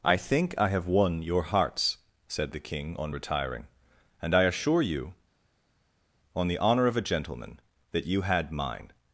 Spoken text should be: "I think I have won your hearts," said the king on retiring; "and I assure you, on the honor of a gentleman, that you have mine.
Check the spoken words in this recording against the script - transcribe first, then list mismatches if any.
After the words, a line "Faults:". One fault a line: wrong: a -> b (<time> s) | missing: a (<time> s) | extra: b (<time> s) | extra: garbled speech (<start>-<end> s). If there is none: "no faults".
"I think I have won your hearts," said the king on retiring; "and I assure you, on the honor of a gentleman, that you had mine.
Faults:
wrong: have -> had (8.2 s)